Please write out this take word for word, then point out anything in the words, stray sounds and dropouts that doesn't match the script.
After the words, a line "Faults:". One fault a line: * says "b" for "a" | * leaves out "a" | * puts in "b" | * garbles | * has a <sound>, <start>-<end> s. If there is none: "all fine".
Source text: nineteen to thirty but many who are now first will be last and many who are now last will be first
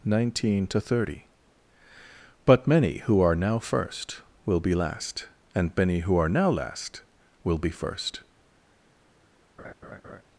nineteen to thirty but many who are now first will be last and many who are now last will be first
Faults:
* has a laugh, 9.6-10.2 s